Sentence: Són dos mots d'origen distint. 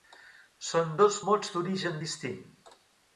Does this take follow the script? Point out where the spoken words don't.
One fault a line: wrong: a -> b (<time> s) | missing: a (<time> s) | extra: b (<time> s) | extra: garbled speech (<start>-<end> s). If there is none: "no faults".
no faults